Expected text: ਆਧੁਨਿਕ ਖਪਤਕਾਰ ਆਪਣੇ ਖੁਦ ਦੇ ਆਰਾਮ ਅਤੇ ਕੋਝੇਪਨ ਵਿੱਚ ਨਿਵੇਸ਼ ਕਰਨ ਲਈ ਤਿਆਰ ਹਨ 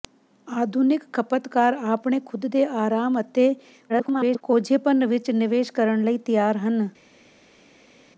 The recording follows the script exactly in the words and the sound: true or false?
false